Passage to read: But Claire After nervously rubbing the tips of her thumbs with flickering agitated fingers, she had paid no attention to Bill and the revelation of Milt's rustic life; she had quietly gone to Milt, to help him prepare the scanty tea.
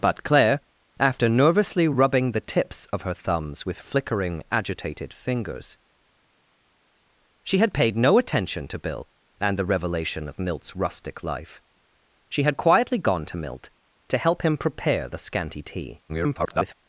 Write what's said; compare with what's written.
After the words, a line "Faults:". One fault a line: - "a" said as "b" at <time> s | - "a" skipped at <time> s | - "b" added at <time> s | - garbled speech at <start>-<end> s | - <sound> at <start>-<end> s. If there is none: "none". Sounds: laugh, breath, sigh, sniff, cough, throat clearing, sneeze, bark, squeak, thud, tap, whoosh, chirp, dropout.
But Claire After nervously rubbing the tips of her thumbs with flickering agitated fingers, she had paid no attention to Bill and the revelation of Milt's rustic life; she had quietly gone to Milt, to help him prepare the scanty tea. [garbled]
Faults:
- garbled speech at 16.1-16.7 s